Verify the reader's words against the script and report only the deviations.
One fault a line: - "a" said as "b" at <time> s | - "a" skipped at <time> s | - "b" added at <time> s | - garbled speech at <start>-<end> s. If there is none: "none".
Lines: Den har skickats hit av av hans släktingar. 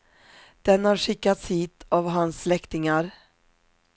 - "av" skipped at 2.1 s